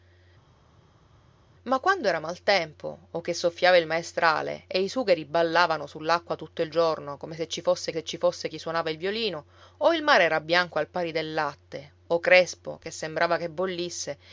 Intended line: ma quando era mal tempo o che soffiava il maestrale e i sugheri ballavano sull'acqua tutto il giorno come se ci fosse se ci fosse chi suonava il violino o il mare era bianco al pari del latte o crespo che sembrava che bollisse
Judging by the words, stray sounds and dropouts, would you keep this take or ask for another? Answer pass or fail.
pass